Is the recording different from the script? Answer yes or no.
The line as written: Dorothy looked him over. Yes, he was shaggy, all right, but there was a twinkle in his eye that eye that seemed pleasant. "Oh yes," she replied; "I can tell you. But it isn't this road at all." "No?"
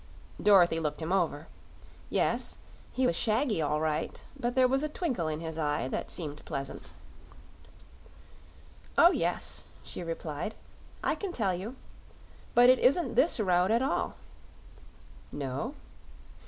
yes